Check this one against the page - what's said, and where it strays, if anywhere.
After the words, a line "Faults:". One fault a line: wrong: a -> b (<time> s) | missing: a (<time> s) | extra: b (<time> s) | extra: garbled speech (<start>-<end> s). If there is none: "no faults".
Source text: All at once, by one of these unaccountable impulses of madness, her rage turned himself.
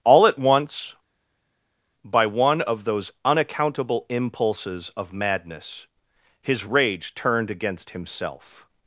All at once, by one of those unaccountable impulses of madness, his rage turned against himself.
Faults:
wrong: these -> those (2.8 s)
wrong: her -> his (6.4 s)
extra: against (7.5 s)